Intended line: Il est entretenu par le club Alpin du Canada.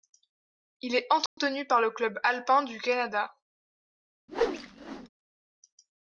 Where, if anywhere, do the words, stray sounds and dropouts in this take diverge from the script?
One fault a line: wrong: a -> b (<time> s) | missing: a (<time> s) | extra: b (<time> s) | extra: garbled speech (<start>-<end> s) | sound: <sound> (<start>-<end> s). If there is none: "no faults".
sound: dropout (1.3-1.4 s)
sound: whoosh (4.3-5.1 s)